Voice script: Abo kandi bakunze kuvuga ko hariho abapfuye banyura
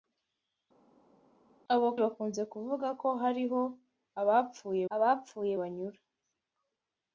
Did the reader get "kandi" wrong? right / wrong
wrong